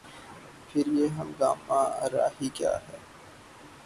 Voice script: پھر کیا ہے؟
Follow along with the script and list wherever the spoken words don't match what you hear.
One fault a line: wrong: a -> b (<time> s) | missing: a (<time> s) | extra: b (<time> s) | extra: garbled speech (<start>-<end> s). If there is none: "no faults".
extra: یہ ہنگامہ آرائی (0.9 s)